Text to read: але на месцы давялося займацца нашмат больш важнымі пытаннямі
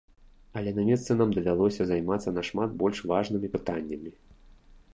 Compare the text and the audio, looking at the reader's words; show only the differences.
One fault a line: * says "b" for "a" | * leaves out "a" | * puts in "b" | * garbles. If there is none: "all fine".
* puts in "нам"